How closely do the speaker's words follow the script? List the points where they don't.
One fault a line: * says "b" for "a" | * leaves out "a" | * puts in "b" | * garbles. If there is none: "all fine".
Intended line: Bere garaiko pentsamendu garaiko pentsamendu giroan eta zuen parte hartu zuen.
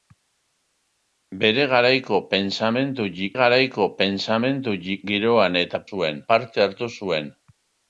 all fine